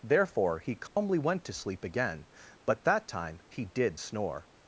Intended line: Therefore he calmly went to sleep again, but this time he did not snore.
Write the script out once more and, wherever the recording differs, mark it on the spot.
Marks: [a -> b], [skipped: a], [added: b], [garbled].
Therefore he calmly went to sleep again, but [this -> that] time he did [skipped: not] snore.